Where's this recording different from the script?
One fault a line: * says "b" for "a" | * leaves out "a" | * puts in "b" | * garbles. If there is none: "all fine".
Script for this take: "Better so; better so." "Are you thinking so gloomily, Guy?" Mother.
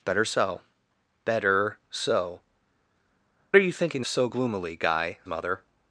all fine